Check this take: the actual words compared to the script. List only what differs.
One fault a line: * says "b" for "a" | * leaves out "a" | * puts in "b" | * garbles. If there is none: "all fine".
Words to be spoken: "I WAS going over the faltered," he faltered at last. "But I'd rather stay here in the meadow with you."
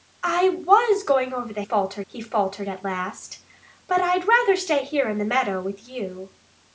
all fine